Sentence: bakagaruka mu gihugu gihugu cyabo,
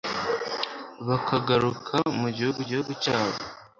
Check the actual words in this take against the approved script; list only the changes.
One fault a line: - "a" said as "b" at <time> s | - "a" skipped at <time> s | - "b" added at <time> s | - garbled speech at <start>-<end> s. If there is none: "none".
none